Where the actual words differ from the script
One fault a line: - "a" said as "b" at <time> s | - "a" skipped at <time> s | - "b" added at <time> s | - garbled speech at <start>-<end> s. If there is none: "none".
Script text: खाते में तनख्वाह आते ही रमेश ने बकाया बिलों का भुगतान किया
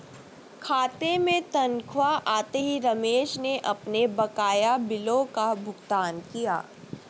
- "अपने" added at 3.7 s